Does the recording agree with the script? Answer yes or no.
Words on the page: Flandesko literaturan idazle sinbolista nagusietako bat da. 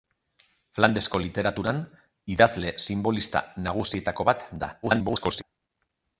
no